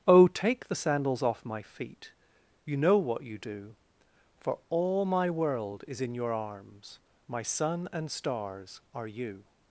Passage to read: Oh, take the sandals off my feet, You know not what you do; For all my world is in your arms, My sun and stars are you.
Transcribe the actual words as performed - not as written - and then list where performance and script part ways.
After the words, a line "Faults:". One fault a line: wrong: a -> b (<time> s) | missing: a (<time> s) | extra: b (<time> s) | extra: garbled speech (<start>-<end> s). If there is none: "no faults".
Oh, take the sandals off my feet, You know what you do; For all my world is in your arms, My sun and stars are you.
Faults:
missing: not (3.0 s)